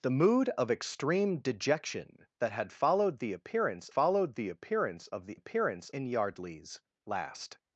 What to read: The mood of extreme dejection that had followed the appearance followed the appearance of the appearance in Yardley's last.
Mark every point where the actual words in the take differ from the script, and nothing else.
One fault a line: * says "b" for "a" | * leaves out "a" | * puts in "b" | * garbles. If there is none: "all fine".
all fine